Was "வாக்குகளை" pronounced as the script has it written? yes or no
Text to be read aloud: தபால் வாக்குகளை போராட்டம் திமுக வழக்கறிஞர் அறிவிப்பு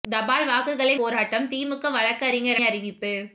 yes